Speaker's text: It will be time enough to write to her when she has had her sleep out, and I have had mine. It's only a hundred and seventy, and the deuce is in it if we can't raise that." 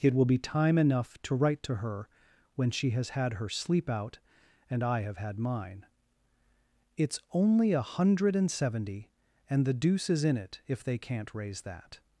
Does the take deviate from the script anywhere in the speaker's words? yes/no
yes